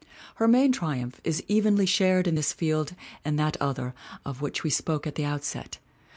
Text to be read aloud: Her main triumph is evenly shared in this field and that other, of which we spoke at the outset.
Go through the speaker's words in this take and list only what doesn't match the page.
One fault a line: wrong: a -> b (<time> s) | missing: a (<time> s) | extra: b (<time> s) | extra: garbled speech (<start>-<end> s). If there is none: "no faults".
no faults